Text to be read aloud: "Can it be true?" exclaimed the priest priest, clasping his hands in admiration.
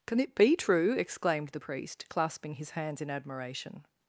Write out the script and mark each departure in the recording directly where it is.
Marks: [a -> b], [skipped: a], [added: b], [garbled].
"Can it be true?" exclaimed the priest [skipped: priest,] clasping his hands in admiration.